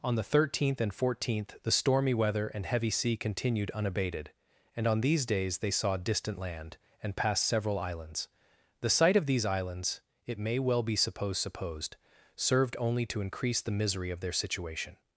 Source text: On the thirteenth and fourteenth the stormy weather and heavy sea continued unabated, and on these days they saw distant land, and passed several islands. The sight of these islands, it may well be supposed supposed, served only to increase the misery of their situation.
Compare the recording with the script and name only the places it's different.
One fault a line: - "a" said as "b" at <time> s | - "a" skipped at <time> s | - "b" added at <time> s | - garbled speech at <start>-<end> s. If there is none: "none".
none